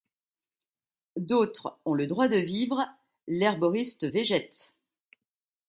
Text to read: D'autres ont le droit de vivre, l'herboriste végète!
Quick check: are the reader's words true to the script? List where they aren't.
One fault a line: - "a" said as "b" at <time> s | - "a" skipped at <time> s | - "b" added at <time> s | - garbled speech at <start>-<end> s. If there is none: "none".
none